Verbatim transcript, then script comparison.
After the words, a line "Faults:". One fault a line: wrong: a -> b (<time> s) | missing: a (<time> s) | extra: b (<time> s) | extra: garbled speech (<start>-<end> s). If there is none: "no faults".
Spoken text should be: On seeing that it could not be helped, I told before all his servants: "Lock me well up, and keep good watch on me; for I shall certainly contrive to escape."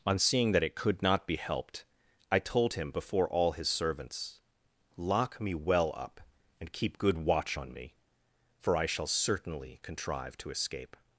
On seeing that it could not be helped, I told him before all his servants: "Lock me well up, and keep good watch on me; for I shall certainly contrive to escape."
Faults:
extra: him (2.7 s)